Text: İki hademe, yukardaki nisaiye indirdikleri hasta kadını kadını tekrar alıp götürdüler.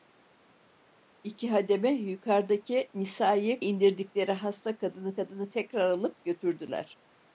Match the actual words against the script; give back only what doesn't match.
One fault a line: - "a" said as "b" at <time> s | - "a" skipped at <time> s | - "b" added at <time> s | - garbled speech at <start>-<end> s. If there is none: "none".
none